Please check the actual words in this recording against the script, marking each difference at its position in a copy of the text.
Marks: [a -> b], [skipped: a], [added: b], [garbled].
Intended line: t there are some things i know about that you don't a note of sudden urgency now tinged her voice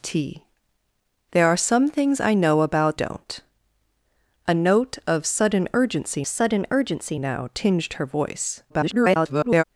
t there are some things i know about [skipped: that you] don't a note of sudden urgency [added: sudden urgency] now tinged her voice [garbled]